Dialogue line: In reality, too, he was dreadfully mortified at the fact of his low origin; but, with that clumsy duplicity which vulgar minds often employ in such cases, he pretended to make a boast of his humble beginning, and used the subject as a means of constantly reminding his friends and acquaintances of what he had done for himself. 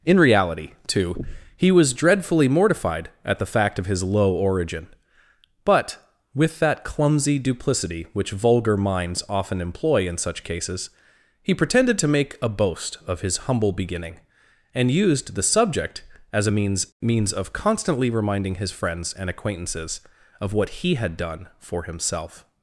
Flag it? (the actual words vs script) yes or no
yes